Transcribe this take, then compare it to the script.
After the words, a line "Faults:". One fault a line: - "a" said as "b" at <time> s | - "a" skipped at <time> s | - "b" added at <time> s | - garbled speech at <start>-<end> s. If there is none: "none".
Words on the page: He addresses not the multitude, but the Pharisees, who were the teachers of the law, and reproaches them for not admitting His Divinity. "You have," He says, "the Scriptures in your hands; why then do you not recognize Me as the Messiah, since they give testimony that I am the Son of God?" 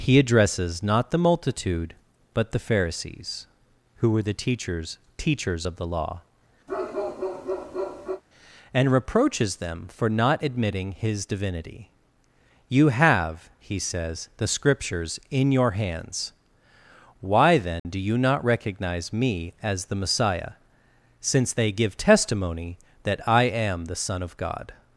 He addresses not the multitude, but the Pharisees, who were the teachers teachers of the law, and reproaches them for not admitting His Divinity. "You have," He says, "the Scriptures in your hands; why then do you not recognize Me as the Messiah, since they give testimony that I am the Son of God?"
Faults:
- "teachers" added at 5.2 s